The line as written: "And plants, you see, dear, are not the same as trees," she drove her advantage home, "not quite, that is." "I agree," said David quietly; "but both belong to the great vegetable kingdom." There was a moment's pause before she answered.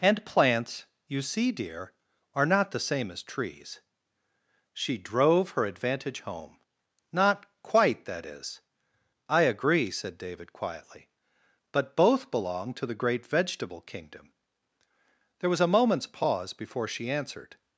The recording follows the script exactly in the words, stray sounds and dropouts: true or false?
true